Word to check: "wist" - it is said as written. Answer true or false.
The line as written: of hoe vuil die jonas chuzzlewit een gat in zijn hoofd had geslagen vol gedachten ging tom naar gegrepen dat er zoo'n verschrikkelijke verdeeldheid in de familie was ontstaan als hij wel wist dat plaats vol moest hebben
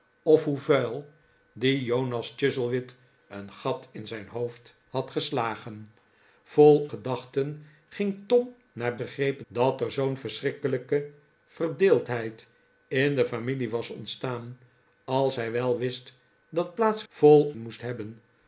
true